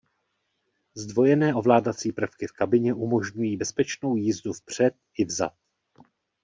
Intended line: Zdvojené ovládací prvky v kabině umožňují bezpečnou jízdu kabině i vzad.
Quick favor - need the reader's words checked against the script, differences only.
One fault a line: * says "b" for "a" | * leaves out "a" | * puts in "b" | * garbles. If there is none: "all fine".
* says "vpřed" for "kabině"